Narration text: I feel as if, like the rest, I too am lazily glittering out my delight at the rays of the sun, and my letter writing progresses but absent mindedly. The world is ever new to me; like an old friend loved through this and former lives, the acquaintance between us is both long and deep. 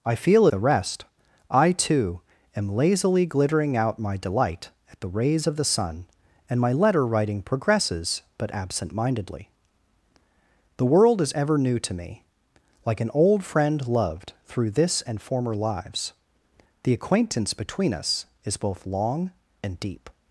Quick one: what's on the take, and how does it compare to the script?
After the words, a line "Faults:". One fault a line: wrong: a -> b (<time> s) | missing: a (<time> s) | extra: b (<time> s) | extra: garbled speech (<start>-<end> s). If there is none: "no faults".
I feel the rest, I too am lazily glittering out my delight at the rays of the sun, and my letter writing progresses but absent mindedly. The world is ever new to me; like an old friend loved through this and former lives, the acquaintance between us is both long and deep.
Faults:
missing: as if like (0.5 s)